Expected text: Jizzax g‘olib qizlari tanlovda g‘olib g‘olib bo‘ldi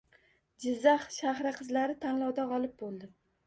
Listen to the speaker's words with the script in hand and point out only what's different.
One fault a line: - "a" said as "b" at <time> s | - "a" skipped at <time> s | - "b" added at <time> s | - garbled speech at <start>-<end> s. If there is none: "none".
- "g‘olib" said as "shahri" at 1.2 s
- "g‘olib" skipped at 2.8 s